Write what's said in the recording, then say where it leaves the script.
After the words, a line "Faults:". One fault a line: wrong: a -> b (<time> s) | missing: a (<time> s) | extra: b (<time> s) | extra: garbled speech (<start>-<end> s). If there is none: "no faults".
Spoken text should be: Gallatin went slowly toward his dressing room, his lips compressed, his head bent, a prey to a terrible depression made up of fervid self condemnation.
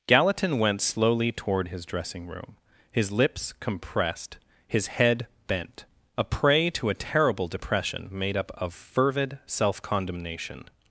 Gallatin went slowly toward his dressing room, his lips compressed, his head bent, a prey to a terrible depression made up of fervid self condemnation.
Faults:
no faults